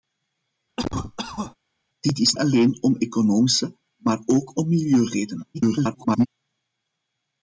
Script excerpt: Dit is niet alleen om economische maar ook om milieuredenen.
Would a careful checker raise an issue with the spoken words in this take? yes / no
yes